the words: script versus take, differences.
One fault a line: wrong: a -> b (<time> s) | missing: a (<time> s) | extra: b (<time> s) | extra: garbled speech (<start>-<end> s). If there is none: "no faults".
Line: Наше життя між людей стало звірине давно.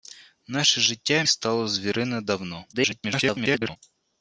missing: між людей (1.2 s)
extra: garbled speech (2.7-3.8 s)